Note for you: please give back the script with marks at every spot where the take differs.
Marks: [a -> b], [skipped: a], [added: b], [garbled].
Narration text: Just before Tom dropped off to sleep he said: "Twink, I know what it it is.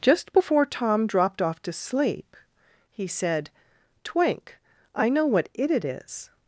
Just before Tom dropped off to sleep he said: "Twink, I know what it it is.